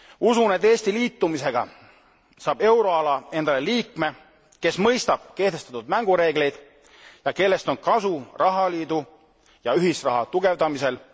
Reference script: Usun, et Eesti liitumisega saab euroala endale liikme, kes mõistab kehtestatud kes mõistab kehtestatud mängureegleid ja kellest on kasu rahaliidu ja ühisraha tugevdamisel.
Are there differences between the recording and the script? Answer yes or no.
yes